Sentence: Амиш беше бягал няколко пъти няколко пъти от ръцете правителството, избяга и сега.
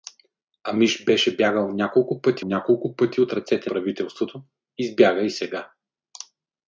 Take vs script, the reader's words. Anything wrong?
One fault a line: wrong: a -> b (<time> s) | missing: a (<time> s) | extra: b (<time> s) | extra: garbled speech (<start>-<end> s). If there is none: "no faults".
no faults